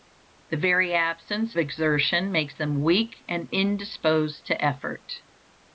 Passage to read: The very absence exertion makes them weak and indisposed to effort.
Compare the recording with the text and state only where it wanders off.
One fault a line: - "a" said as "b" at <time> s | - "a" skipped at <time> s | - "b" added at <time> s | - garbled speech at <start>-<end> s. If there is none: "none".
none